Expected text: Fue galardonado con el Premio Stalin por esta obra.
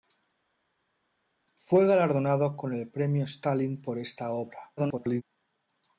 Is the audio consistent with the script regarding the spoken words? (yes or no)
no